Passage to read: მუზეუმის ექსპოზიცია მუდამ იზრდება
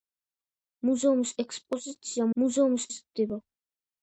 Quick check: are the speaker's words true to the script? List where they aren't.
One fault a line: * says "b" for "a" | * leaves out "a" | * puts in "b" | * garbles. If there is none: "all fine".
* says "მუზეუმის" for "მუდამ"